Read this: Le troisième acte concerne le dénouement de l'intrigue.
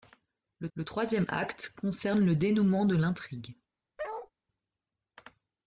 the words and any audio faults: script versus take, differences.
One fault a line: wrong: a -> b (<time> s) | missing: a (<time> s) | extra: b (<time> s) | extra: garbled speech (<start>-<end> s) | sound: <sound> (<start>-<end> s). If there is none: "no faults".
extra: le (0.7 s)
sound: bark (4.0-4.3 s)